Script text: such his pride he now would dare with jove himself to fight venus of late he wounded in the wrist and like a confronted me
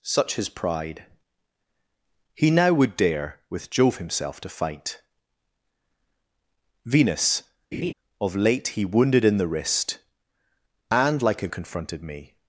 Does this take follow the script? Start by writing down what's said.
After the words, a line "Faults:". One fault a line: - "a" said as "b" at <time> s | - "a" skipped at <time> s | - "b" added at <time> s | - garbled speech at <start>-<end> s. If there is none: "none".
such his pride he now would dare with jove himself to fight venus of late he wounded in the wrist and like a confronted me
Faults:
none